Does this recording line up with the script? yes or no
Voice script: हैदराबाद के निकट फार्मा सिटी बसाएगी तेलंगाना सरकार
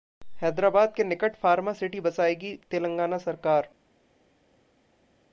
yes